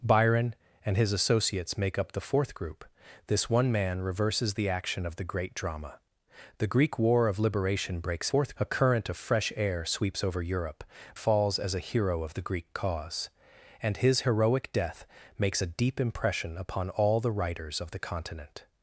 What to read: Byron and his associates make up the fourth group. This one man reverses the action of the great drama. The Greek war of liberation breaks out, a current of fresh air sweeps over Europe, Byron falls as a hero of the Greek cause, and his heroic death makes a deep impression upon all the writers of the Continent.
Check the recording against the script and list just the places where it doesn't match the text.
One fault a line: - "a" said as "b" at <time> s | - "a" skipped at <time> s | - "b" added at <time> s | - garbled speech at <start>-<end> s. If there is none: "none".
- "out" said as "fourth" at 8.3 s
- "Byron" skipped at 10.8 s